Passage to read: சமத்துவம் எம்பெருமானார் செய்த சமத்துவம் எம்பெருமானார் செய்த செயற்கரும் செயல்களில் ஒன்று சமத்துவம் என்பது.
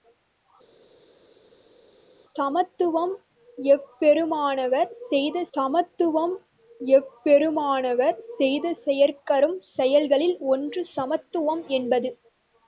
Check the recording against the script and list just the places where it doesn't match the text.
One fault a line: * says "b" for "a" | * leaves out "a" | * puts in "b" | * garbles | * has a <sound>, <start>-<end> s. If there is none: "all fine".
all fine